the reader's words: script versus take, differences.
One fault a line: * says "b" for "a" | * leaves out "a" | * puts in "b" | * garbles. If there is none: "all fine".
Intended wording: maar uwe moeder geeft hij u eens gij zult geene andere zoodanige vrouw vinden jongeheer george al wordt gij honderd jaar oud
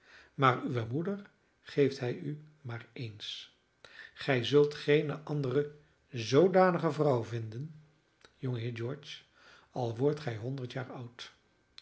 * puts in "maar"